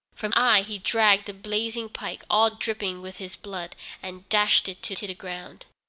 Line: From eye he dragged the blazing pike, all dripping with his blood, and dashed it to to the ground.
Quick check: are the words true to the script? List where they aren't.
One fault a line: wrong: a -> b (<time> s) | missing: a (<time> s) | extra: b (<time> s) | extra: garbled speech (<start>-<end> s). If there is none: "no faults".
no faults